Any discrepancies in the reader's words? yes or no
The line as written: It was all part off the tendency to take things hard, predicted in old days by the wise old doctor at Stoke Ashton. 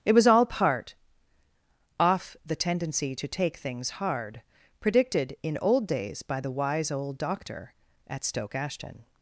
no